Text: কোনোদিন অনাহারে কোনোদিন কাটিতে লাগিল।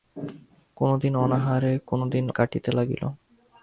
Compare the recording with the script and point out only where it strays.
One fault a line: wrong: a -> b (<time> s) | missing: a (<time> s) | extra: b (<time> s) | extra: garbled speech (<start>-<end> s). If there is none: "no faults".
no faults